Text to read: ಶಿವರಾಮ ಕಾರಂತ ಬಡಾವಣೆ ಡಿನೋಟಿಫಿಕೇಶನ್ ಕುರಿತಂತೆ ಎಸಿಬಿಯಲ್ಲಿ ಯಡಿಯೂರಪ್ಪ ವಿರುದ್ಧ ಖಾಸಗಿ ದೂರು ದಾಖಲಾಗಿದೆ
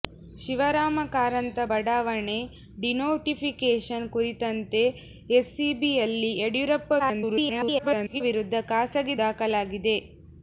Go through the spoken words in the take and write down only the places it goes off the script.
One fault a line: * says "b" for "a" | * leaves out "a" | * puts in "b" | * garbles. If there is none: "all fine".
* garbles
* leaves out "ದೂರು"